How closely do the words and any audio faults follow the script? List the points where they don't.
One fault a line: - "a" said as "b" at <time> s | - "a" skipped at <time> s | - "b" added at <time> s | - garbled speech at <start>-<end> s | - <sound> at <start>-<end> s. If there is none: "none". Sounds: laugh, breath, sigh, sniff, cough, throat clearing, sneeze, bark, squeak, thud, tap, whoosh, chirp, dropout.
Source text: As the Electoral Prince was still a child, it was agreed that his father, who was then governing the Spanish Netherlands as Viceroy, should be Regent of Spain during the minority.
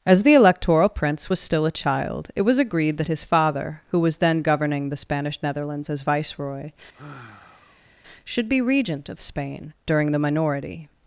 - sigh at 6.9-7.9 s